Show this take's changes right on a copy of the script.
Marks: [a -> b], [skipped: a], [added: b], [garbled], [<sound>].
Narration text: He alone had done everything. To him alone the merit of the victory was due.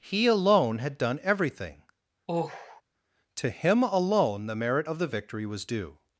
He alone had done everything. [sigh] To him alone the merit of the victory was due.